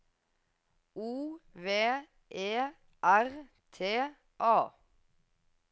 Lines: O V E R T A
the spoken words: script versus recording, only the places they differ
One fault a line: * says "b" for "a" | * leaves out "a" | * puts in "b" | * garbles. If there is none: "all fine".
all fine